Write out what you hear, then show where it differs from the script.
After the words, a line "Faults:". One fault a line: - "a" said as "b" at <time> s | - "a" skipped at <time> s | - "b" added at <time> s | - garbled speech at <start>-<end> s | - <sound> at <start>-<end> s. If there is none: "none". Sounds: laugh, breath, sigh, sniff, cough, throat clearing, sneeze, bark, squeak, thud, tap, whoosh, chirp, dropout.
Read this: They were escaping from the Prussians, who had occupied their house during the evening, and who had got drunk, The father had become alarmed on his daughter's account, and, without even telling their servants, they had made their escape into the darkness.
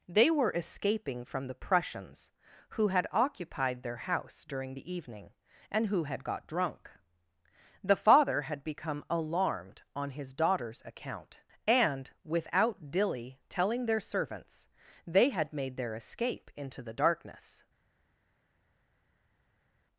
They were escaping from the Prussians, who had occupied their house during the evening, and who had got drunk, The father had become alarmed on his daughter's account, and, without dilly telling their servants, they had made their escape into the darkness.
Faults:
- "even" said as "dilly" at 12.9 s